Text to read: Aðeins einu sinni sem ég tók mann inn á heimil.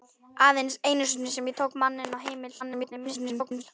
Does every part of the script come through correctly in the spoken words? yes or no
no